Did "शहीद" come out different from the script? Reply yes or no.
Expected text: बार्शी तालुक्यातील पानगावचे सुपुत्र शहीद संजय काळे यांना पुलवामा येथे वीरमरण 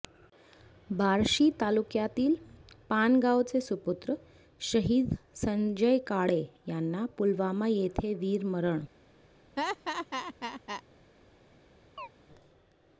no